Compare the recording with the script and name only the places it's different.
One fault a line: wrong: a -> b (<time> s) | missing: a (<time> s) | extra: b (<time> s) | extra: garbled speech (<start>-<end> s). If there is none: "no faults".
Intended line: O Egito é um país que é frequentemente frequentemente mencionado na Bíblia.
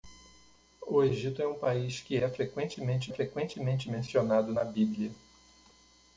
no faults